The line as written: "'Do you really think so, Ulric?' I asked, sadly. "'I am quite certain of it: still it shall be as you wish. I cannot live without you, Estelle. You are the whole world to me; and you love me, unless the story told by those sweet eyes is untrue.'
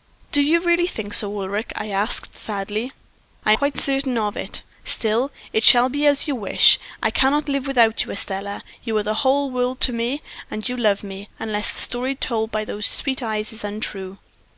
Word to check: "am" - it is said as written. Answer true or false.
false